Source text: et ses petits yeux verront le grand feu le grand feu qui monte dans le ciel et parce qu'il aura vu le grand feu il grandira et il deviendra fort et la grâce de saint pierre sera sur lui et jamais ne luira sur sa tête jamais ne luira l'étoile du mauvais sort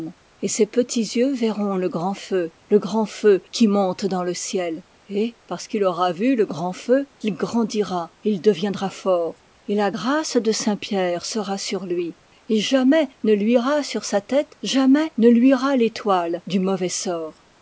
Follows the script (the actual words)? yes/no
yes